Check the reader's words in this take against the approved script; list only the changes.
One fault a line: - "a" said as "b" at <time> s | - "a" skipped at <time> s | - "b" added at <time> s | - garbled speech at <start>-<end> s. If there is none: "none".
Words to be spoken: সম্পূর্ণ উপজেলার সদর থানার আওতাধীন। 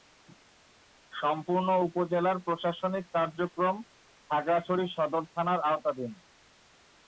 - "প্রশাসনিক কার্যক্রম খাগড়াছড়ি" added at 2.4 s